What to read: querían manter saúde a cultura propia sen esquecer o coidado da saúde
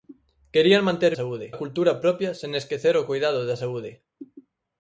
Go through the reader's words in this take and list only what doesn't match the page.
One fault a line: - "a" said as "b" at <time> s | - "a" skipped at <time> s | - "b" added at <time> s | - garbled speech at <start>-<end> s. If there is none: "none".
none